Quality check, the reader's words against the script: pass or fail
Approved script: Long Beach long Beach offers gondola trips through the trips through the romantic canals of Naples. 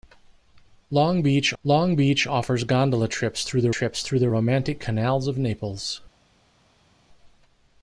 pass